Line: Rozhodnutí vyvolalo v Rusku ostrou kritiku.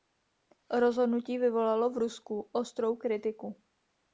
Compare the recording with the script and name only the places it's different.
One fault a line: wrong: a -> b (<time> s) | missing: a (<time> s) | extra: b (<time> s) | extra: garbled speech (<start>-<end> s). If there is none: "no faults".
no faults